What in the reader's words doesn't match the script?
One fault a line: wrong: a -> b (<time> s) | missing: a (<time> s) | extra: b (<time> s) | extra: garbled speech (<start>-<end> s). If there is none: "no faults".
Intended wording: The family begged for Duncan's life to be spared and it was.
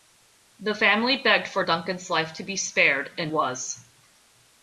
missing: it (3.3 s)